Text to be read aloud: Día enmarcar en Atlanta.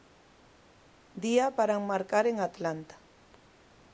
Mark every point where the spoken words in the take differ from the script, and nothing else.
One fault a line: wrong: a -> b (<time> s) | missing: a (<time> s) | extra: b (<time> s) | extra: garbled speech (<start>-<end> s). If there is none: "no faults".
extra: para (1.6 s)